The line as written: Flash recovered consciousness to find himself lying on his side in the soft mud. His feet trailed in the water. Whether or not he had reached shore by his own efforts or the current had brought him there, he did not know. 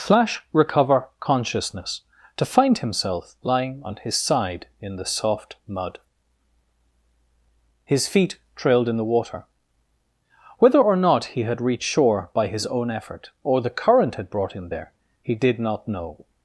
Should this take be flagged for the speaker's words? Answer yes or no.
yes